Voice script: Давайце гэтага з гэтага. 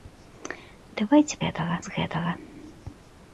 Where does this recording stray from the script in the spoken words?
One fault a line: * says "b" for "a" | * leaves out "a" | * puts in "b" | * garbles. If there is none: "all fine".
all fine